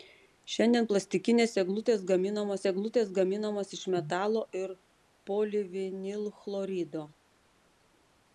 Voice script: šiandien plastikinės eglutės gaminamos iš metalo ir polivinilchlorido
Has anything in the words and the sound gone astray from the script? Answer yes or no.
yes